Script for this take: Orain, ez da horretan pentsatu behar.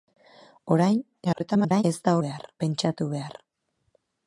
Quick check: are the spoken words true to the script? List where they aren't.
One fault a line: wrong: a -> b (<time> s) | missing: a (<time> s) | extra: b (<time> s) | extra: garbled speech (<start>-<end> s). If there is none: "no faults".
extra: garbled speech (1.2-1.8 s)
wrong: horretan -> behar (2.3 s)